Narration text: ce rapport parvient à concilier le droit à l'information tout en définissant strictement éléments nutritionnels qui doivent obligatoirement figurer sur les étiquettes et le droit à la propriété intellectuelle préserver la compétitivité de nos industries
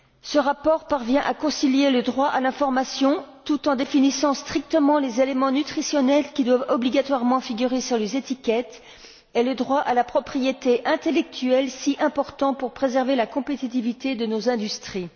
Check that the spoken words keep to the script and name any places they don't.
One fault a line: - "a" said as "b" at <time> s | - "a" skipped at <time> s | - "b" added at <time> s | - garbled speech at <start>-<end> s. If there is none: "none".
- "les" added at 5.0 s
- "si important pour" added at 11.7 s